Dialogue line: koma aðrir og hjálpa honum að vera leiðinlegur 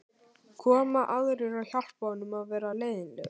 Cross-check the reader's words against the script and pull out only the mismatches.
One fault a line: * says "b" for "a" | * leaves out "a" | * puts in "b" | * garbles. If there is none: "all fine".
all fine